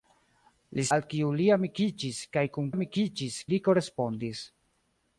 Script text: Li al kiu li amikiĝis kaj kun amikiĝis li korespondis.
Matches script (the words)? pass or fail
pass